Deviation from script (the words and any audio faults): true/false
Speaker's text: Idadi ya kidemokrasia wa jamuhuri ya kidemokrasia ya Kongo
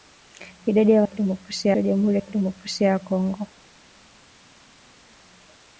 false